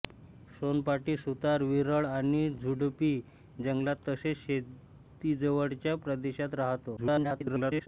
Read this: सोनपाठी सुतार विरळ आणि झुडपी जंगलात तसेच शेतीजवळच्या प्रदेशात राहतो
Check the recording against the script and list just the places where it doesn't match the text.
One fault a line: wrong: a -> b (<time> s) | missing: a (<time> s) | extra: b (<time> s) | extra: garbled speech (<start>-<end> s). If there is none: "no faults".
extra: garbled speech (7.0-7.9 s)